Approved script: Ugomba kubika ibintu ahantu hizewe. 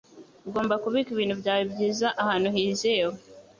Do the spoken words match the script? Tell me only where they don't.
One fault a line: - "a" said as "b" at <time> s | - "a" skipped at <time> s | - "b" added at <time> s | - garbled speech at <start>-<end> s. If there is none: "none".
- "byawe byiza" added at 1.4 s